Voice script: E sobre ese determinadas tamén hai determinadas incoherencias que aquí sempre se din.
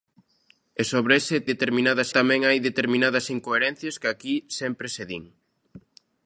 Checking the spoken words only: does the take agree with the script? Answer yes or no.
yes